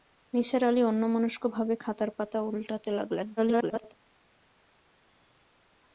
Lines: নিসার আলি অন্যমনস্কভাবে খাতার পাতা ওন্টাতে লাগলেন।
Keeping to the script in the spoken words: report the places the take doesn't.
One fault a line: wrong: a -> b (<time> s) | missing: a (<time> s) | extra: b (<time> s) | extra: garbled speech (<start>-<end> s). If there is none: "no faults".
extra: garbled speech (3.4-3.9 s)